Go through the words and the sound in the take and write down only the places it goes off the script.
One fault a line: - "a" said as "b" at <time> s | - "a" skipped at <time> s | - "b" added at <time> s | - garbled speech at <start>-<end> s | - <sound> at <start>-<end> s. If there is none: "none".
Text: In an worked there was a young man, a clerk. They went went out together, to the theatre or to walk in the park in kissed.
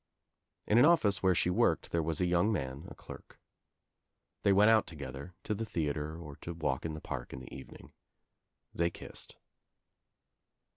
- "office where she" added at 0.8 s
- "went" skipped at 4.7 s
- "the evening They" added at 7.4 s